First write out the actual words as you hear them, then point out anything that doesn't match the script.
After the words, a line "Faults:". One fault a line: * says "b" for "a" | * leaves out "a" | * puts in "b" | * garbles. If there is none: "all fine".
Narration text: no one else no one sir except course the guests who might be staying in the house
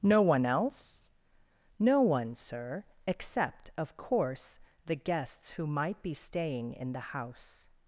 no one else no one sir except of course the guests who might be staying in the house
Faults:
* puts in "of"